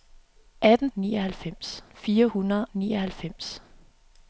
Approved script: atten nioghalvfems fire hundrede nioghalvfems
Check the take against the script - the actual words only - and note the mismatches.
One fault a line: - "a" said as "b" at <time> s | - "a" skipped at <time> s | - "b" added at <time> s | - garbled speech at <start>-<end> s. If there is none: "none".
none